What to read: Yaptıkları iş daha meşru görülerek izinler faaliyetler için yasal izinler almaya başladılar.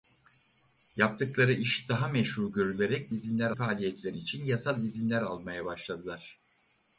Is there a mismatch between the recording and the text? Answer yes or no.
no